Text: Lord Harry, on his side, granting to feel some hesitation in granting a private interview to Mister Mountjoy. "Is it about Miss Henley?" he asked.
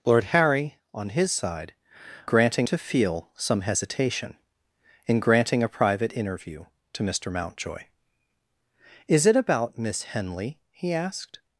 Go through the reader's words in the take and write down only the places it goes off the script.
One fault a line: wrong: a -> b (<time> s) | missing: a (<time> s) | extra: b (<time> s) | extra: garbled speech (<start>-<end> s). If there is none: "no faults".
no faults